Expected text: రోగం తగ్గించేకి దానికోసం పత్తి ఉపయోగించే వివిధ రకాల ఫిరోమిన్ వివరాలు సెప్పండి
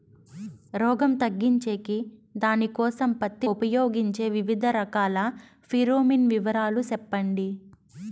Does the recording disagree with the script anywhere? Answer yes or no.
no